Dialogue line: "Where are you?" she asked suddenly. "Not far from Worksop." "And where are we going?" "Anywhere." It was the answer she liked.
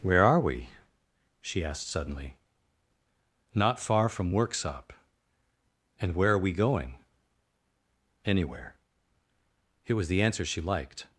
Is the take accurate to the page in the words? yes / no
no